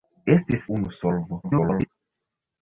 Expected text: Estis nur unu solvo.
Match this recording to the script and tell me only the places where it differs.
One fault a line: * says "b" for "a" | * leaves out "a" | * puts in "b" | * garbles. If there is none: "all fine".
* leaves out "nur"
* garbles